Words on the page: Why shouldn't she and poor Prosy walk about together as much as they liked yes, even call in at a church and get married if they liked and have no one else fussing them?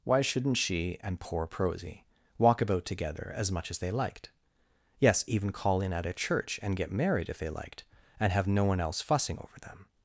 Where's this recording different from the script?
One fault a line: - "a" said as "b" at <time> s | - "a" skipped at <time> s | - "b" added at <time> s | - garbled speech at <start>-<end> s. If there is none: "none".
- "over" added at 9.4 s